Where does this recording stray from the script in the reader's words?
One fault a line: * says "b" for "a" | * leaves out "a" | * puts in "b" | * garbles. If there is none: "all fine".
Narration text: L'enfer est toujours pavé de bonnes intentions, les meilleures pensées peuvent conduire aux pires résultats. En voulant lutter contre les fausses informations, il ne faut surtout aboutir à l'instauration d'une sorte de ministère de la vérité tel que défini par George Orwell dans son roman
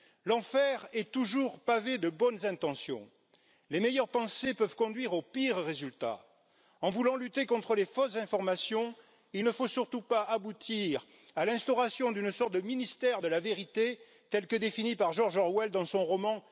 * puts in "pas"